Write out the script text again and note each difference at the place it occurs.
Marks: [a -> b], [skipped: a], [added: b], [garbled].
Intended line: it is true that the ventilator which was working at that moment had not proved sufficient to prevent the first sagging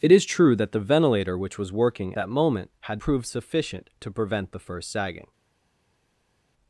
it is true that the ventilator which was working [skipped: at] that moment had [skipped: not] proved sufficient to prevent the first sagging